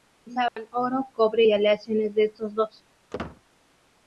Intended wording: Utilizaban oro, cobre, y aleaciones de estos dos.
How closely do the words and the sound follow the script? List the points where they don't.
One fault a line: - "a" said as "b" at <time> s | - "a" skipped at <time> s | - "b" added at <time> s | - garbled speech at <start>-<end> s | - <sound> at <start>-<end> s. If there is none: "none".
- dropout at 0.5-0.6 s
- squeak at 3.1-3.4 s